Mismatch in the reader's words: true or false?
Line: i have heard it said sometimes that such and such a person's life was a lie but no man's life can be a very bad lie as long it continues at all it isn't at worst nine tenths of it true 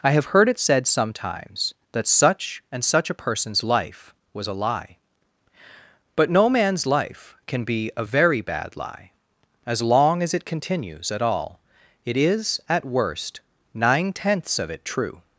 true